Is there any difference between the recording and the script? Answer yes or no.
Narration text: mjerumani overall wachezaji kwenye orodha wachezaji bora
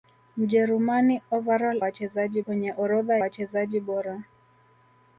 no